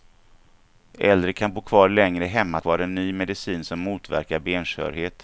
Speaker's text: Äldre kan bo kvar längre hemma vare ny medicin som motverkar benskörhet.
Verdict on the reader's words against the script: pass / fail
pass